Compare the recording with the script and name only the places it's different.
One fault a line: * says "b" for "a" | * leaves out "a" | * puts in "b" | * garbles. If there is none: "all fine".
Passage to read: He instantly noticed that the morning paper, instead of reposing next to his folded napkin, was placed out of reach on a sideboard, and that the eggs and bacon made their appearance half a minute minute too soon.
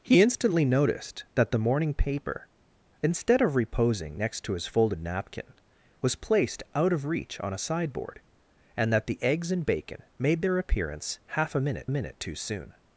all fine